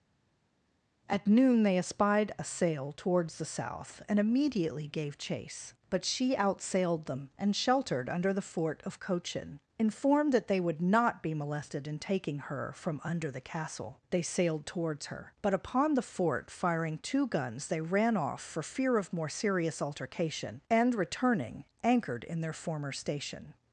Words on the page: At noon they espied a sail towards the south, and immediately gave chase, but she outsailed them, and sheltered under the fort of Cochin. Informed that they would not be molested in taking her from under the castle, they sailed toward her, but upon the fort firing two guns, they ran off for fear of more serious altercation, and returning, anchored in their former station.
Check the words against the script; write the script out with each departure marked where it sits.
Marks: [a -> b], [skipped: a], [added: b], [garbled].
At noon they espied a sail towards the south, and immediately gave chase, but she outsailed them, and sheltered under the fort of Cochin. Informed that they would not be molested in taking her from under the castle, they sailed [toward -> towards] her, but upon the fort firing two guns, they ran off for fear of more serious altercation, and returning, anchored in their former station.